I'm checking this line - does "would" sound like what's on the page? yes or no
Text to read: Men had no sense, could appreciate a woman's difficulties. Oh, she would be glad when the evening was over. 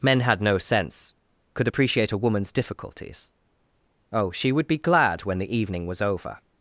yes